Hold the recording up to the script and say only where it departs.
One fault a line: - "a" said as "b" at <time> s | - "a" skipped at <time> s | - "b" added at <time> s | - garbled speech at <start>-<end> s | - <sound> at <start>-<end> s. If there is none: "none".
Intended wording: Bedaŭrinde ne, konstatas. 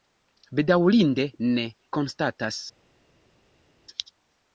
none